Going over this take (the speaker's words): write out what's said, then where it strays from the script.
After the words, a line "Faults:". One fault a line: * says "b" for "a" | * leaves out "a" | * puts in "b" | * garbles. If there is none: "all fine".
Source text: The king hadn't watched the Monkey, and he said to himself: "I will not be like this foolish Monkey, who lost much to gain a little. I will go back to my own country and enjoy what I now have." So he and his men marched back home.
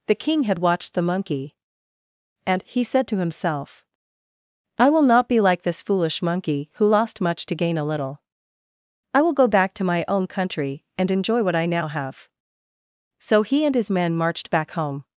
The king had watched the Monkey, and he said to himself: "I will not be like this foolish Monkey, who lost much to gain a little. I will go back to my own country and enjoy what I now have." So he and his men marched back home.
Faults:
* says "had" for "hadn't"